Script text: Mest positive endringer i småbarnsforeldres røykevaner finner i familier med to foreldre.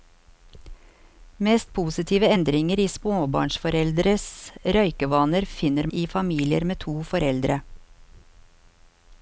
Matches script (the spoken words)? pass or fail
pass